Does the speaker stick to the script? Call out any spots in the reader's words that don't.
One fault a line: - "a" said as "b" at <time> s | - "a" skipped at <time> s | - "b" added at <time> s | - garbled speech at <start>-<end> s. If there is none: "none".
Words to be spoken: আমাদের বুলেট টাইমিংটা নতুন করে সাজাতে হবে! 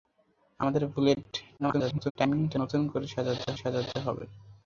- garbled speech at 1.6-2.1 s
- "সাজাতে" added at 3.5 s